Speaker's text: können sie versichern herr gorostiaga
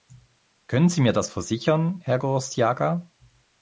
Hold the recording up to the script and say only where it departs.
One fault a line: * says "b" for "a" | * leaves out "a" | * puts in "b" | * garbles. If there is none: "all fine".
* puts in "mir das"